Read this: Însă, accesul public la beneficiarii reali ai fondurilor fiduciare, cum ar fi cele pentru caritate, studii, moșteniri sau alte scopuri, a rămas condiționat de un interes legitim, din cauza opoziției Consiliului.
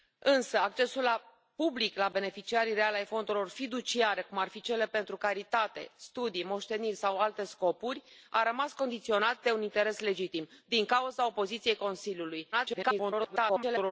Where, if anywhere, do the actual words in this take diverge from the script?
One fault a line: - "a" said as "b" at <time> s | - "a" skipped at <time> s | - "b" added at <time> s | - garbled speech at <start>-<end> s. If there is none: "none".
- garbled speech at 12.5-13.9 s